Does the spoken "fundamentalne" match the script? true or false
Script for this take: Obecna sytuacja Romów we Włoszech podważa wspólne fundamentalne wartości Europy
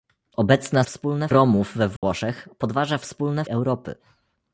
false